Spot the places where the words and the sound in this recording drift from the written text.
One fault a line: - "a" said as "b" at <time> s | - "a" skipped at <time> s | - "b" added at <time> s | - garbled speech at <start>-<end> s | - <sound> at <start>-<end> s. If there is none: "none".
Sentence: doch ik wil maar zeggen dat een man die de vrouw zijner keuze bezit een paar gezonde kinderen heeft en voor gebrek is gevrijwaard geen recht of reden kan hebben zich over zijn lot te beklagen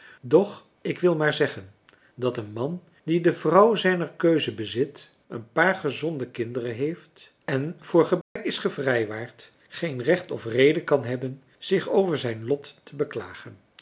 - dropout at 8.2-8.4 s